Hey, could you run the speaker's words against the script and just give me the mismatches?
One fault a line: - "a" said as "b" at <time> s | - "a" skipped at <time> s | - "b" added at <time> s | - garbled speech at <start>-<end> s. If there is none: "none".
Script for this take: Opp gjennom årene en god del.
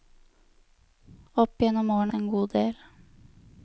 none